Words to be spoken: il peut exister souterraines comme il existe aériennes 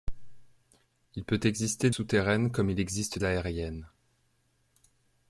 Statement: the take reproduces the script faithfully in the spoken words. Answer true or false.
true